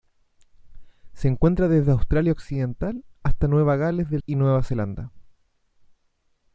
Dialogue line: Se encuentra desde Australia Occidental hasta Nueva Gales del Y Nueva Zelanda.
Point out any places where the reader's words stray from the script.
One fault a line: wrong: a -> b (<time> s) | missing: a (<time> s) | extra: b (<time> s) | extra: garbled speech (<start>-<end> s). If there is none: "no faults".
no faults